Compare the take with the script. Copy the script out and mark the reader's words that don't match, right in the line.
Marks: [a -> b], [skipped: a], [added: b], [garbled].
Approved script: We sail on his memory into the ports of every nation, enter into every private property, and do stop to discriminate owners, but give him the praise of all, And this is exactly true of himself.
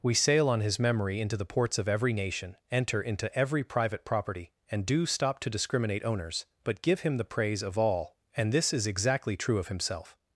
We sail on his memory into the ports of every nation, enter into every private property, and do stop to discriminate owners, but give him the praise of all, And this is exactly true of himself.